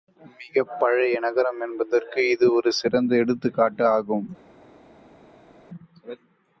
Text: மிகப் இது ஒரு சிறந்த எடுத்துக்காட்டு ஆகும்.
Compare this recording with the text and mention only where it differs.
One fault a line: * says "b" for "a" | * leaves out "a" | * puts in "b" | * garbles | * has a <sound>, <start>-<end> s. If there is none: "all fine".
* puts in "பழைய நகரம் என்பதற்கு"